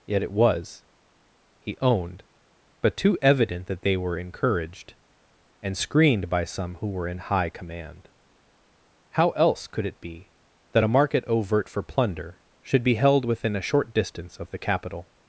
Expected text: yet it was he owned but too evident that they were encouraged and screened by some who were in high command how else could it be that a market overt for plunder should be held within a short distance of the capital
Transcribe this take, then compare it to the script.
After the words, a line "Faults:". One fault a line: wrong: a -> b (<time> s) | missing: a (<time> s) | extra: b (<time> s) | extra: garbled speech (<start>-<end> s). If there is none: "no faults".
yet it was he owned but too evident that they were encouraged and screened by some who were in high command how else could it be that a market overt for plunder should be held within a short distance of the capital
Faults:
no faults